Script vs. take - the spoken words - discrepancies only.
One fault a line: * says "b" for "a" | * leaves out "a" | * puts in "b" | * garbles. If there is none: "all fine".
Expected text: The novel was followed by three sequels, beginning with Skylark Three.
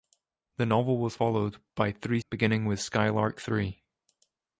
* leaves out "sequels"